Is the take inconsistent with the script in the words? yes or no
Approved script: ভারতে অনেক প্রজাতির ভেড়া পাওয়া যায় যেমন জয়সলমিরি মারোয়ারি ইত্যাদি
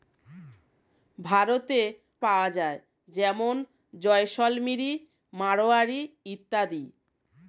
yes